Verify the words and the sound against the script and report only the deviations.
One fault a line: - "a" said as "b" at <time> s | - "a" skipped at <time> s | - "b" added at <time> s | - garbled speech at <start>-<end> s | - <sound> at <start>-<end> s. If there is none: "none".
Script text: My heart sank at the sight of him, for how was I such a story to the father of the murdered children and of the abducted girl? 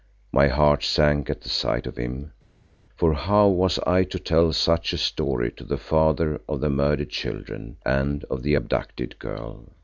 - "to tell" added at 4.0 s